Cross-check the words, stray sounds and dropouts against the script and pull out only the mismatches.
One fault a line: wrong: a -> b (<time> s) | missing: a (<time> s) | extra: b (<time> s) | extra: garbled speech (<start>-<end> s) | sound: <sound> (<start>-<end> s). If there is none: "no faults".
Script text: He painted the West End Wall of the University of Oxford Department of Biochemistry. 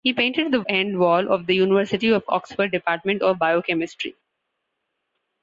missing: West (0.6 s)